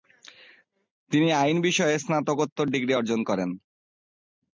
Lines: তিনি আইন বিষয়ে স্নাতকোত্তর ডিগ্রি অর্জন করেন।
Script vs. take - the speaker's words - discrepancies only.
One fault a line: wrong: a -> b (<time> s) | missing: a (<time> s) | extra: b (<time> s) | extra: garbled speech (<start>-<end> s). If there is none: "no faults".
no faults